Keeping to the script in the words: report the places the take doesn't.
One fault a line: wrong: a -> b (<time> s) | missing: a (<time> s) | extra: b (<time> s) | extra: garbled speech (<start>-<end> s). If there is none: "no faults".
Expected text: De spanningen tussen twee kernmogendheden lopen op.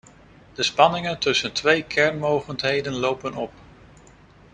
no faults